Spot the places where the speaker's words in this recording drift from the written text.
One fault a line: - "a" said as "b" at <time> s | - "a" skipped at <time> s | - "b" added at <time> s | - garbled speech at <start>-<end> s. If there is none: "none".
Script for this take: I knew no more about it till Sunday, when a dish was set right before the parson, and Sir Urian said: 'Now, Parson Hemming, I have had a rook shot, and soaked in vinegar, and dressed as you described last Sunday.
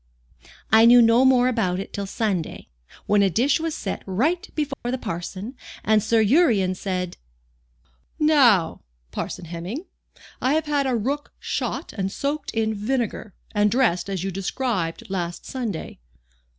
none